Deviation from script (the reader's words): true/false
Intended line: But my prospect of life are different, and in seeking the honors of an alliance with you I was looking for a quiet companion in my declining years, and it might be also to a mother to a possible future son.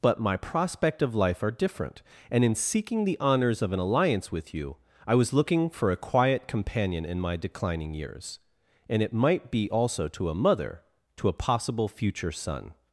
false